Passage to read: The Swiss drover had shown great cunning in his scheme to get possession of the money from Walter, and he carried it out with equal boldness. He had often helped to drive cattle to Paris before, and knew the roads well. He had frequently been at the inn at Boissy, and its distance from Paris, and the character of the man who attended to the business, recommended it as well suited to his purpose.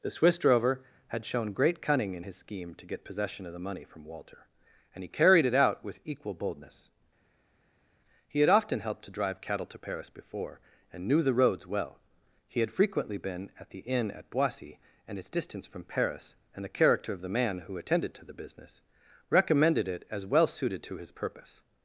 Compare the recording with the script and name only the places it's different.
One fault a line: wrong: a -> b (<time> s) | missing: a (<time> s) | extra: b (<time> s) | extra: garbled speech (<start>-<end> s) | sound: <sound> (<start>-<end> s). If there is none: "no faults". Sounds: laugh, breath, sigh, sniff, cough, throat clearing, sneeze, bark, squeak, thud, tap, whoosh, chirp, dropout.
no faults